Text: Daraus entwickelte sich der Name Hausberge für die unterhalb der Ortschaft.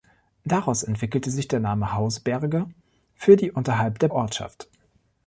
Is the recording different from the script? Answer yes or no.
no